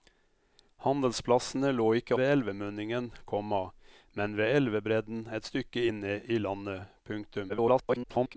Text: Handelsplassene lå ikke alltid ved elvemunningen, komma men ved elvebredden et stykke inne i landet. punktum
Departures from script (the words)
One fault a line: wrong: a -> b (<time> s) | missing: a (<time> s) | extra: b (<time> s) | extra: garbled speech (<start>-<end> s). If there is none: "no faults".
missing: alltid (2.2 s)
extra: garbled speech (7.5-8.4 s)